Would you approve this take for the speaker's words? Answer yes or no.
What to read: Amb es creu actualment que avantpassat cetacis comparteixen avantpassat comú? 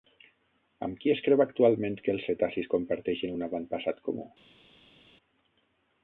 no